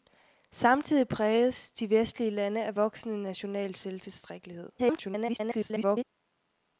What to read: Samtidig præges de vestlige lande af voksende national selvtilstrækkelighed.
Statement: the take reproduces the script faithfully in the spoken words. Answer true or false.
false